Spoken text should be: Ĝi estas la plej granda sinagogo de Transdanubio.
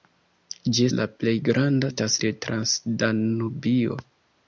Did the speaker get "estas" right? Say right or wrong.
wrong